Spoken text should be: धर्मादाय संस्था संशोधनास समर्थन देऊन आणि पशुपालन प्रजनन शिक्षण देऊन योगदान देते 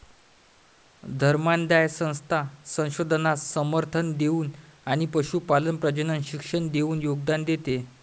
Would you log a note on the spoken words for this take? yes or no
no